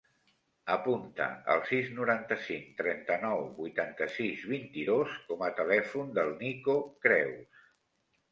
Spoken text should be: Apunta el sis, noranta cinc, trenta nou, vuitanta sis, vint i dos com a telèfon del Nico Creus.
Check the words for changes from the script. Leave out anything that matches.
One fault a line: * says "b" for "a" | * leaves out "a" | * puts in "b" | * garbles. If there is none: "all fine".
all fine